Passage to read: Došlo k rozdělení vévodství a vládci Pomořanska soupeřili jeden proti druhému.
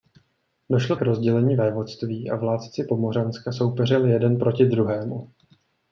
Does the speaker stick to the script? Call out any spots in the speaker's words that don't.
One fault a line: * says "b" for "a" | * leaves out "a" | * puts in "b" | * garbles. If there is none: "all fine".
all fine